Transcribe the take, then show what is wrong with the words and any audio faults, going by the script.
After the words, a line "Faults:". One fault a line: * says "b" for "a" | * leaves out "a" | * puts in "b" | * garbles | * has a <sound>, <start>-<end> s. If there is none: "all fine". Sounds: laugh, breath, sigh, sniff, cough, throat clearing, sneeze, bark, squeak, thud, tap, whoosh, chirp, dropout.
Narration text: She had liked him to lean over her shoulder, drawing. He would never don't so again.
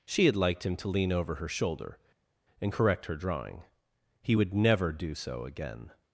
She had liked him to lean over her shoulder, and correct her drawing. He would never do so again.
Faults:
* puts in "and correct her"
* says "do" for "don't"